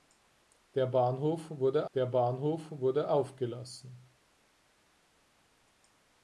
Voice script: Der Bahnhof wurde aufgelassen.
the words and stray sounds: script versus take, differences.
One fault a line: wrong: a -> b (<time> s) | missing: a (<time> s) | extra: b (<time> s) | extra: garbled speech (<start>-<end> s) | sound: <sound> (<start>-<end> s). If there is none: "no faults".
extra: der Bahnhof wurde (1.9 s)